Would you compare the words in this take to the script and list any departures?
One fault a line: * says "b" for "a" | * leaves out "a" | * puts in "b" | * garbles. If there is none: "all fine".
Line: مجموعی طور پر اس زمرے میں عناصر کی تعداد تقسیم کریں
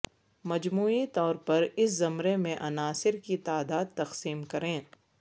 all fine